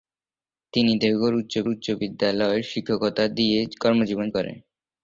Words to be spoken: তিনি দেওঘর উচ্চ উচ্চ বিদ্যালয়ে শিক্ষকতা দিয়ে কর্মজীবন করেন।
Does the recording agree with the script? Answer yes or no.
yes